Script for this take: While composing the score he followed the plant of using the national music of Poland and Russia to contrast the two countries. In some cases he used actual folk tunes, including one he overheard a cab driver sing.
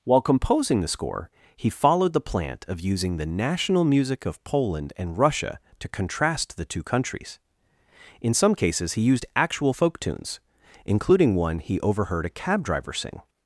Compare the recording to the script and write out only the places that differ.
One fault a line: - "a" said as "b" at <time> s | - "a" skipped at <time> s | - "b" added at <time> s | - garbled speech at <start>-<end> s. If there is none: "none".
none